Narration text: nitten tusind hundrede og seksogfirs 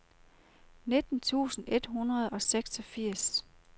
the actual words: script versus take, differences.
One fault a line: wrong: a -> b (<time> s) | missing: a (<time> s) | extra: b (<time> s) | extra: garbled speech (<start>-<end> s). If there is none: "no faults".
extra: et (1.7 s)